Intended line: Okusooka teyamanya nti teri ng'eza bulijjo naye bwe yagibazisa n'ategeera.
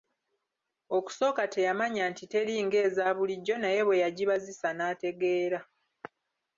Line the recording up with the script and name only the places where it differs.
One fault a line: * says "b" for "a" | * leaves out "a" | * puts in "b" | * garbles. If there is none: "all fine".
all fine